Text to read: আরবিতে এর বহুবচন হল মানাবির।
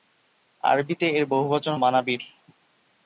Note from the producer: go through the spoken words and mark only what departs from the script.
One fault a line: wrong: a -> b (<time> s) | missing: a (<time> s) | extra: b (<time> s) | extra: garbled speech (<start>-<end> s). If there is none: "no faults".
missing: হল (1.7 s)